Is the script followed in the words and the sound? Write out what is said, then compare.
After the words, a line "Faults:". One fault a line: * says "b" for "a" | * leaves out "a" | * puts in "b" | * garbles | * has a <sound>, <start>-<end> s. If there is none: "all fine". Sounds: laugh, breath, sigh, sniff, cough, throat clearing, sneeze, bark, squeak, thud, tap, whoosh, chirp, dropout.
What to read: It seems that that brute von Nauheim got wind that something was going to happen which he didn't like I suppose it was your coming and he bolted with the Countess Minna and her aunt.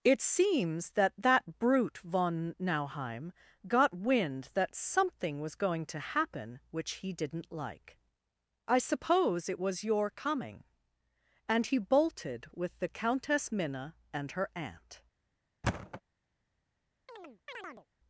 It seems that that brute von Nauheim got wind that something was going to happen which he didn't like I suppose it was your coming and he bolted with the Countess Minna and her aunt.
Faults:
* has a thud, 15.6-16.0 s
* has a chirp, 17.1-17.9 s